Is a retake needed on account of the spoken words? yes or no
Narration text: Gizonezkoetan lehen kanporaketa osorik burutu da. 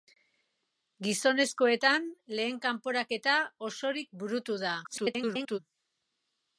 yes